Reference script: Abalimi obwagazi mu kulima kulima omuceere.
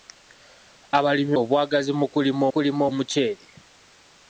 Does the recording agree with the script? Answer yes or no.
yes